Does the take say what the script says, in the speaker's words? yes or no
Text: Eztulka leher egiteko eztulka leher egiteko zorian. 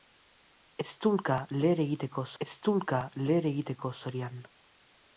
yes